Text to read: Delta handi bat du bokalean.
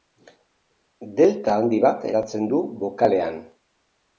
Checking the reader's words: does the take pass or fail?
fail